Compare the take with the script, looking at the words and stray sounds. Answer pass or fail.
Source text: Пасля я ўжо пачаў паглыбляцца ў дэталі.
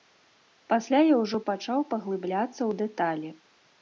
pass